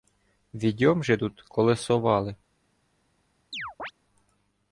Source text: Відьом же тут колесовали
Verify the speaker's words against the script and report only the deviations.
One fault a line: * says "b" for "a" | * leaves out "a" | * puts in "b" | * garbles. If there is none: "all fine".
all fine